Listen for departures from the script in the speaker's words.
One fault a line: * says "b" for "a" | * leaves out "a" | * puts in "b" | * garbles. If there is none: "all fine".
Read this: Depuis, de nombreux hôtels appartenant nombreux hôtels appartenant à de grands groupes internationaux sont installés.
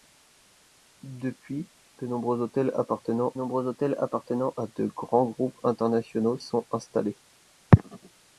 all fine